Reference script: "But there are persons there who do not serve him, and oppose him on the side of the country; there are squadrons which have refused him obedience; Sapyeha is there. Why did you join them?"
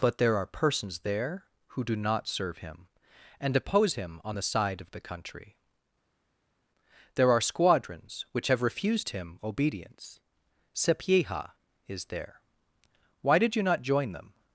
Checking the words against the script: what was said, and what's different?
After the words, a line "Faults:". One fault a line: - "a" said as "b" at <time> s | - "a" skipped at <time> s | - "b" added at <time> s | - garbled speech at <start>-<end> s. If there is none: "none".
"But there are persons there who do not serve him, and oppose him on the side of the country; there are squadrons which have refused him obedience; Sapyeha is there. Why did you not join them?"
Faults:
- "not" added at 13.6 s